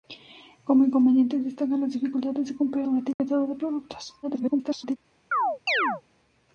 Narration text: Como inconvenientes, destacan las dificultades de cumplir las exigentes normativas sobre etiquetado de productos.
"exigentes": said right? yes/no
no